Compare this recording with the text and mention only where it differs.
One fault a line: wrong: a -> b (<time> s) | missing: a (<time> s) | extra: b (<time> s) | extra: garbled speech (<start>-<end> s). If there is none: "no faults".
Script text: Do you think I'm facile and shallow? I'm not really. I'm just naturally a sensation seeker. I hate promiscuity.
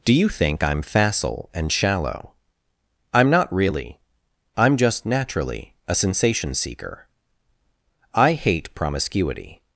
no faults